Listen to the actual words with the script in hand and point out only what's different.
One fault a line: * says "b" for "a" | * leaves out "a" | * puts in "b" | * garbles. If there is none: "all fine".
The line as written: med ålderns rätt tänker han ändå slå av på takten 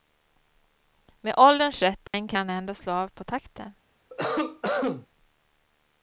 all fine